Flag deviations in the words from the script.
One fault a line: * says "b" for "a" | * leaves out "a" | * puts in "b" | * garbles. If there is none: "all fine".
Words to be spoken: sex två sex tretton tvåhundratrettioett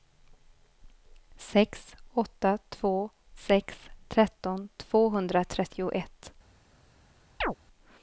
* puts in "åtta"